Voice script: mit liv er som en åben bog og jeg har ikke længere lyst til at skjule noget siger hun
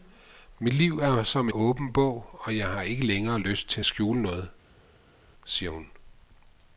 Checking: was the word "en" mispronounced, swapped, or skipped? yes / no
yes